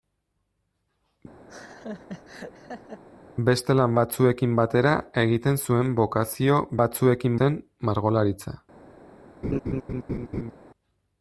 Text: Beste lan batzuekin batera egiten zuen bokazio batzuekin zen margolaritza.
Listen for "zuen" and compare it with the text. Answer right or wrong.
right